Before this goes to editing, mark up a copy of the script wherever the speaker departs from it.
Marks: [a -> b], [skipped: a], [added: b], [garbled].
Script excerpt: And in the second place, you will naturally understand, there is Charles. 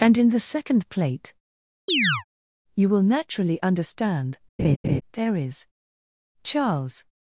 And in the second [place, -> plate] you will naturally understand, there is Charles.